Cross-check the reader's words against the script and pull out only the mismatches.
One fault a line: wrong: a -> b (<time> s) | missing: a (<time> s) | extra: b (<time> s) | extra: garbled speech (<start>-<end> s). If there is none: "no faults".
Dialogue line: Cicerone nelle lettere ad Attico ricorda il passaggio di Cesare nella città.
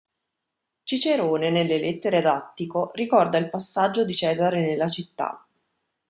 no faults